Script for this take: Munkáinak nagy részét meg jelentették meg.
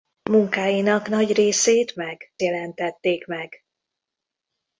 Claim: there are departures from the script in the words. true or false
false